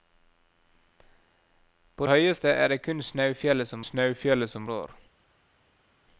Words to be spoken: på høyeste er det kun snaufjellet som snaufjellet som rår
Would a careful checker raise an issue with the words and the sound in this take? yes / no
no